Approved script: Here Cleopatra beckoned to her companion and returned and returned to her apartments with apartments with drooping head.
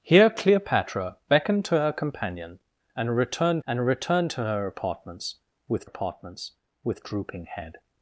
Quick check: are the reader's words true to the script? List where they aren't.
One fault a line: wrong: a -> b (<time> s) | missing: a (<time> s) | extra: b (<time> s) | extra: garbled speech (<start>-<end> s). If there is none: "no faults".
no faults